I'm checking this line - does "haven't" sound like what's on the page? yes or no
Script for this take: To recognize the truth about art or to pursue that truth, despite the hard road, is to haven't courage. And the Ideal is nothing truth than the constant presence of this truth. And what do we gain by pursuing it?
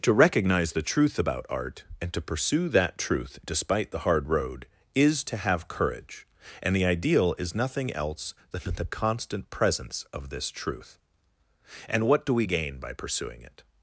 no